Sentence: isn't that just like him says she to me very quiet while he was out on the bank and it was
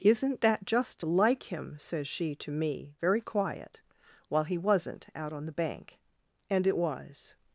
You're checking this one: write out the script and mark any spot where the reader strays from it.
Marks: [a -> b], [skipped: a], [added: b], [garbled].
isn't that just like him says she to me very quiet while he [was -> wasn't] out on the bank and it was